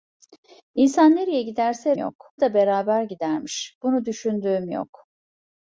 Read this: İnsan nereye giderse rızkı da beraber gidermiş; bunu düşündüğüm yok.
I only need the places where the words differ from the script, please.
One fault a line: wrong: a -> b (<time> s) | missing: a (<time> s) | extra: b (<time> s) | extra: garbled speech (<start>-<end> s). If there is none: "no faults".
wrong: rızkı -> yok (2.0 s)